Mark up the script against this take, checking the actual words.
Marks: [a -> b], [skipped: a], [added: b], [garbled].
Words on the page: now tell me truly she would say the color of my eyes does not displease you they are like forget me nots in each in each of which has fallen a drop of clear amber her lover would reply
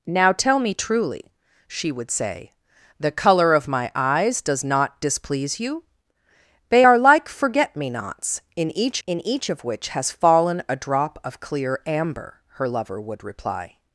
now tell me truly she would say the color of my eyes does not displease you they are like forget me nots in each in each of which has fallen a drop of clear amber her lover would reply